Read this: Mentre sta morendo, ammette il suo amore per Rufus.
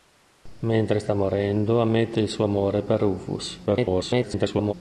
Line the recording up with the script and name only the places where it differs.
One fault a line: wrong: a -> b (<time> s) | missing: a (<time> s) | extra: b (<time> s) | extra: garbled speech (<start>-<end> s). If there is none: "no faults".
extra: garbled speech (3.7-4.7 s)